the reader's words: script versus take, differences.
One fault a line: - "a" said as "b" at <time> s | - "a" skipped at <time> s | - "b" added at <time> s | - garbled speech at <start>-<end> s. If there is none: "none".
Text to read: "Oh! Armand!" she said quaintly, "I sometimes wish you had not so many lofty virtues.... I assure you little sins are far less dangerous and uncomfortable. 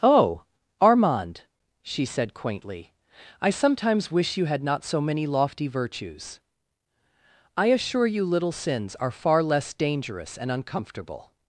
none